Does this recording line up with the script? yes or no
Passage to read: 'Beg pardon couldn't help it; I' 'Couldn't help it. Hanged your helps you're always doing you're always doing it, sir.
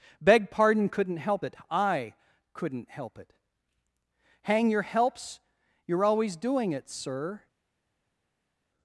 no